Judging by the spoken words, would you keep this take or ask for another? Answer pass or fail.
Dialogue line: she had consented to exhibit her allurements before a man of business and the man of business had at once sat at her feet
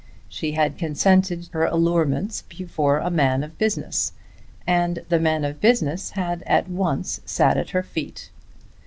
fail